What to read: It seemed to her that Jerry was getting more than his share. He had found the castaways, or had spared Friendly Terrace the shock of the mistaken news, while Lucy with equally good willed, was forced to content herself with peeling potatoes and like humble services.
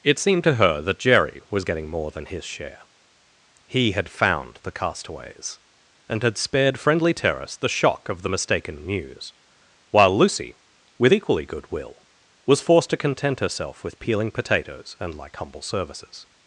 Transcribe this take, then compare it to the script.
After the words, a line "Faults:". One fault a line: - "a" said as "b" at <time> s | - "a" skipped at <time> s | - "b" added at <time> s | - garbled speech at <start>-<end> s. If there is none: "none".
It seemed to her that Jerry was getting more than his share. He had found the castaways, and had spared Friendly Terrace the shock of the mistaken news, while Lucy with equally good will, was forced to content herself with peeling potatoes and like humble services.
Faults:
- "or" said as "and" at 6.1 s
- "willed" said as "will" at 11.7 s